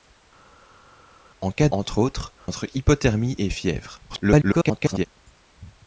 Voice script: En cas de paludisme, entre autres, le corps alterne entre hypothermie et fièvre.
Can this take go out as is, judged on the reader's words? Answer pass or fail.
fail